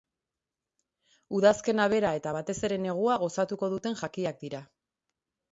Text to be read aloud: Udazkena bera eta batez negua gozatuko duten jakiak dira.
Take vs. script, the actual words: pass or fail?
fail